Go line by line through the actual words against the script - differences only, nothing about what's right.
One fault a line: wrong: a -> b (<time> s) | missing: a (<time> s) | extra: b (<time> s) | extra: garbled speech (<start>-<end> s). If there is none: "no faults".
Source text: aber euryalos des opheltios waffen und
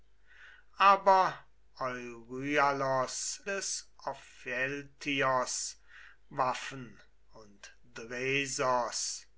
no faults